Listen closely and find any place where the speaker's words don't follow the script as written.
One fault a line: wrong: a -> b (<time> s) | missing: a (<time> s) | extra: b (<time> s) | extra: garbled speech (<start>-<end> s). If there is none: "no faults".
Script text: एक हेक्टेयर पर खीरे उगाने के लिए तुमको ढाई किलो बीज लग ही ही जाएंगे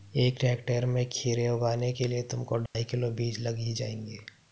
wrong: पर -> में (0.8 s)
missing: ही (3.7 s)